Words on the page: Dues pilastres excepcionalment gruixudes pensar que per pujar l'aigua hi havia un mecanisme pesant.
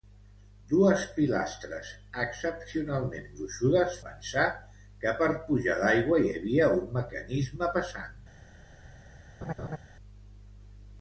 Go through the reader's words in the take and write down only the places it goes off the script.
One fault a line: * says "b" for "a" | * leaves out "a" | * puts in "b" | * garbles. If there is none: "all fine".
all fine